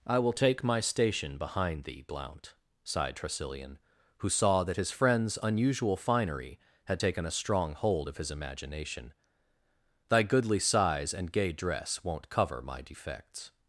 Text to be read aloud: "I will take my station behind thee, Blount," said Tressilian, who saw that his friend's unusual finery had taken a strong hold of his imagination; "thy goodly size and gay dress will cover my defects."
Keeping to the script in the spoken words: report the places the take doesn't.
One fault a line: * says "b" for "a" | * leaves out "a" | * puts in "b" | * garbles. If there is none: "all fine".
* says "sighed" for "said"
* says "won't" for "will"